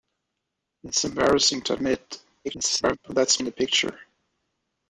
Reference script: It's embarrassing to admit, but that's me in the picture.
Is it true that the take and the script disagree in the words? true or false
true